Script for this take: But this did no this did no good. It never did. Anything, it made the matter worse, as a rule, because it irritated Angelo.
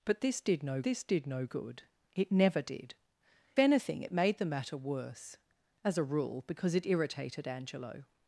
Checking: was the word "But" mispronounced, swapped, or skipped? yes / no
no